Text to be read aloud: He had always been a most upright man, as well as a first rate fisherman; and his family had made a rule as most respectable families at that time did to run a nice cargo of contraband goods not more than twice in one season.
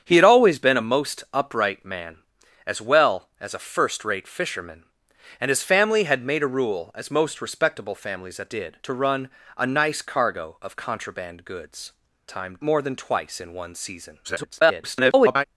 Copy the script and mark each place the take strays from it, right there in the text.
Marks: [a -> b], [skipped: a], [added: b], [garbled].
He had always been a most upright man, as well as a first rate fisherman; and his family had made a rule as most respectable families at [skipped: that time] did to run a nice cargo of contraband goods [not -> time] more than twice in one season. [garbled]